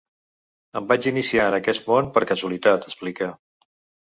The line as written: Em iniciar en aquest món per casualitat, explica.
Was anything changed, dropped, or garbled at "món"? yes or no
no